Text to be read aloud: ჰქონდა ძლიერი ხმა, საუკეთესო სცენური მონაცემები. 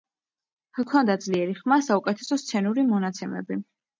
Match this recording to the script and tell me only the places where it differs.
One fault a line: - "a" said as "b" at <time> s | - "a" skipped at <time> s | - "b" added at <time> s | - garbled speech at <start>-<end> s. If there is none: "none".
none